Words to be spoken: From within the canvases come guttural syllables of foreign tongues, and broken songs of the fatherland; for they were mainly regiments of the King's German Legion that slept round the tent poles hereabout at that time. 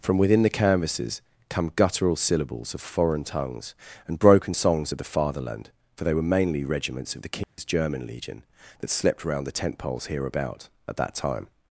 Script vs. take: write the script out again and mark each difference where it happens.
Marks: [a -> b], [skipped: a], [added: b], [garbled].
From within the canvases come guttural syllables of foreign tongues, and broken songs of the fatherland; for they were mainly regiments of the King's German Legion that slept round the tent poles hereabout at that time.